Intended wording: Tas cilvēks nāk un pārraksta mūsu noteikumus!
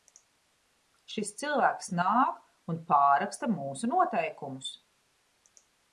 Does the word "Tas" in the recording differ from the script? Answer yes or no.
yes